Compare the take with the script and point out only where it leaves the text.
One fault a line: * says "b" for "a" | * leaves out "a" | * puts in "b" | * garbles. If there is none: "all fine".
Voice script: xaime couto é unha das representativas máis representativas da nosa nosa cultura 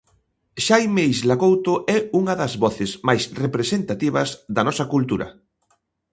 * puts in "isla"
* says "voces" for "representativas"
* leaves out "nosa"